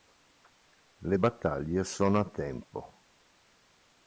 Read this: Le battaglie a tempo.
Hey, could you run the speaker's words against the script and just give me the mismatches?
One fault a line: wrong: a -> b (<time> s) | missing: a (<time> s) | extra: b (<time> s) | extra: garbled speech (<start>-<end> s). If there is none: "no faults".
extra: sono (1.8 s)